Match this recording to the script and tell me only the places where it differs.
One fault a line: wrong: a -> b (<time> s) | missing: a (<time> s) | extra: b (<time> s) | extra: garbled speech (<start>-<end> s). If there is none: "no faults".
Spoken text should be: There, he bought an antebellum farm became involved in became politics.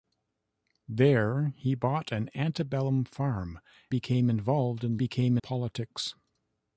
no faults